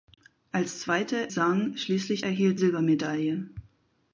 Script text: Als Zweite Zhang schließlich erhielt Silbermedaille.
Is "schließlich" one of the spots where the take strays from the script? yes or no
no